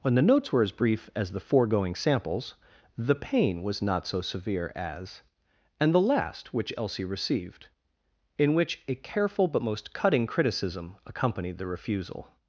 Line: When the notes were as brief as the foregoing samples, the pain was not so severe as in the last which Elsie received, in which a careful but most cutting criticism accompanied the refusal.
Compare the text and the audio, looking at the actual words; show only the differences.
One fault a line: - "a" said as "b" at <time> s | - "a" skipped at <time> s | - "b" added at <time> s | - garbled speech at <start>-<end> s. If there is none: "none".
- "in" said as "and" at 5.8 s